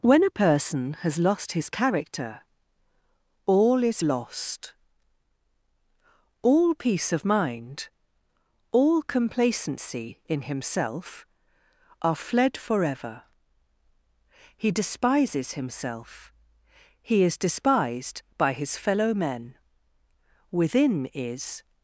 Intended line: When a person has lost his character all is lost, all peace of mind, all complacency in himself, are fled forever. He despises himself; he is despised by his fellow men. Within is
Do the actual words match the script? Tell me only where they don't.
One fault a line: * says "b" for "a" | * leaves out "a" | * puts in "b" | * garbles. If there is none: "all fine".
all fine